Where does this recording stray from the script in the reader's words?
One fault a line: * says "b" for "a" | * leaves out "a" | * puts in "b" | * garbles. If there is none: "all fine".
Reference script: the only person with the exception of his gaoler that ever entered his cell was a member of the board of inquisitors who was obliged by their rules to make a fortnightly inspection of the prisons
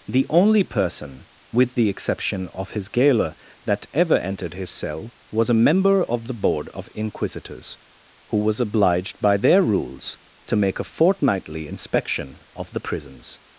all fine